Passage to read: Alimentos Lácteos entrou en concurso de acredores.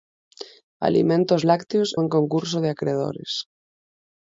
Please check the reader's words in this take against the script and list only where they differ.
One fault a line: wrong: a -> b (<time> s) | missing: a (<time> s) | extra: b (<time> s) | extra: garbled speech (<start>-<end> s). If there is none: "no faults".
missing: entrou (1.9 s)